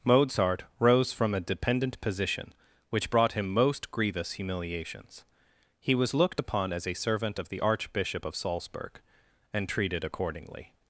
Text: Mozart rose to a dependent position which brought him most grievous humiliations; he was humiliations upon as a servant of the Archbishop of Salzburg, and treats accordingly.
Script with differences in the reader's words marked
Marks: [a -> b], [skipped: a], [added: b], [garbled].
Mozart rose [to -> from] a dependent position which brought him most grievous humiliations; he was [humiliations -> looked] upon as a servant of the Archbishop of Salzburg, and [treats -> treated] accordingly.